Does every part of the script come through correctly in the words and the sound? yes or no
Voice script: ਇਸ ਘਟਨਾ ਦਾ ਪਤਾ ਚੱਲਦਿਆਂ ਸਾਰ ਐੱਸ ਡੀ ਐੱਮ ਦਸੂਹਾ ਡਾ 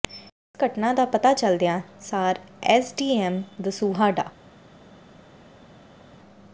yes